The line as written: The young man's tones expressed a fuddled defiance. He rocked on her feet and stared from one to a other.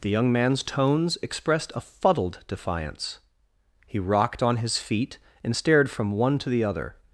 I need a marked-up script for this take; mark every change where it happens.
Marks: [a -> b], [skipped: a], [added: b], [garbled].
The young man's tones expressed a fuddled defiance. He rocked on [her -> his] feet and stared from one to [a -> the] other.